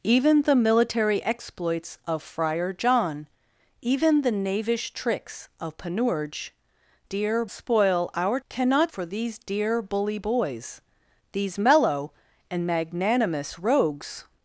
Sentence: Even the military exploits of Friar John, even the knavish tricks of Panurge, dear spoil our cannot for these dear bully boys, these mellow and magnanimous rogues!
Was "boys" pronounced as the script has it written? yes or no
yes